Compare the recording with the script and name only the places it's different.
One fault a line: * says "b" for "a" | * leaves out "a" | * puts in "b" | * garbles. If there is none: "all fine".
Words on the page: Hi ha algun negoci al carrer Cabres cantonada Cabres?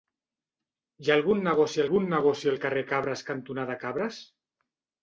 * puts in "algun negoci"